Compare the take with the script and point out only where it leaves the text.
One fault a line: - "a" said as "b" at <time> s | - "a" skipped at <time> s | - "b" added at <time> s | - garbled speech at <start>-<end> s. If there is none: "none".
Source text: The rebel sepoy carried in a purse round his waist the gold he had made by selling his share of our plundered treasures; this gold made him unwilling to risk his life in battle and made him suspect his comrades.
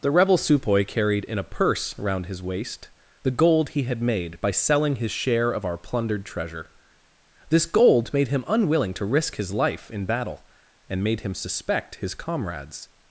- "treasures" said as "treasure" at 6.2 s